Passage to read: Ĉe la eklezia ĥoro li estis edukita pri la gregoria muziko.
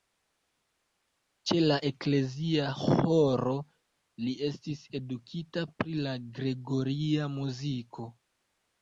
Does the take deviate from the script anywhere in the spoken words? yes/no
no